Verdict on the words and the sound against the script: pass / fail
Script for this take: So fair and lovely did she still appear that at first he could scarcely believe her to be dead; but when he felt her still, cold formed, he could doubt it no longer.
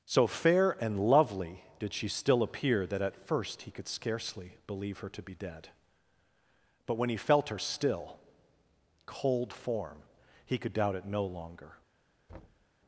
fail